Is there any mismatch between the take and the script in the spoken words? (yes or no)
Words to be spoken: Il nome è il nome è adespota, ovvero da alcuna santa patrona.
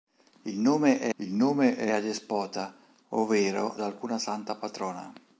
no